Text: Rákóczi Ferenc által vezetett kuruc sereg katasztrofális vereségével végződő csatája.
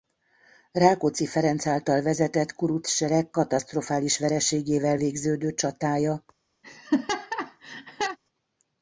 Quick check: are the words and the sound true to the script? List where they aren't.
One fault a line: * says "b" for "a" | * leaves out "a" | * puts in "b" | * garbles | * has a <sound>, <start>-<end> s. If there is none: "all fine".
* has a laugh, 6.6-8.2 s